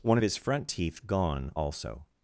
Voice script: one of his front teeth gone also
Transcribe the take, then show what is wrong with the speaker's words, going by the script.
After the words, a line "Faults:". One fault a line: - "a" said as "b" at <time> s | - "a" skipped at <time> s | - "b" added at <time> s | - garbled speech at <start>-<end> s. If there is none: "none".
one of his front teeth gone also
Faults:
none